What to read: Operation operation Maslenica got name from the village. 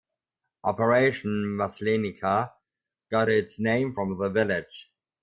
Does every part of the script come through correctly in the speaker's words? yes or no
no